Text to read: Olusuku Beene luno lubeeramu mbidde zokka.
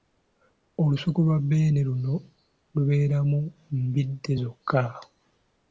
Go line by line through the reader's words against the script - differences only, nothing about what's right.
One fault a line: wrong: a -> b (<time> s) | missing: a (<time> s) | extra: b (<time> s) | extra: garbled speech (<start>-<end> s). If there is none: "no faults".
extra: lwa (1.2 s)